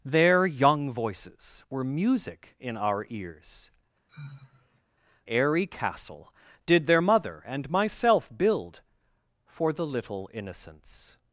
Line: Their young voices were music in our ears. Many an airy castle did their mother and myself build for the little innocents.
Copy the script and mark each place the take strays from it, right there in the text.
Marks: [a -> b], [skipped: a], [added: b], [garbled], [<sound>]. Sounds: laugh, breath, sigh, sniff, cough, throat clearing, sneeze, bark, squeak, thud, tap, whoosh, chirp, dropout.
Their young voices were music in our ears. [skipped: Many an] [sigh] airy castle did their mother and myself build for the little innocents.